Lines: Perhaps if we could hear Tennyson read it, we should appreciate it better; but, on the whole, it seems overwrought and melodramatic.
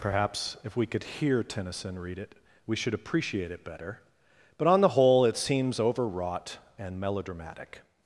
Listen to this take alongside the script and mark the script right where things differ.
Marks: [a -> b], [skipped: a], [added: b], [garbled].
Perhaps if we could hear Tennyson read it, we should appreciate it better; but, on the whole, it seems overwrought and melodramatic.